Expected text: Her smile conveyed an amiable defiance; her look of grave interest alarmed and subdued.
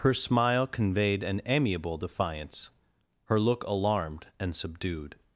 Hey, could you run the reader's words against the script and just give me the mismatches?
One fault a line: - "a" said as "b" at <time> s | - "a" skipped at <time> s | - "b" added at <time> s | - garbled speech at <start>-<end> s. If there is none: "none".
- "of grave interest" skipped at 3.6 s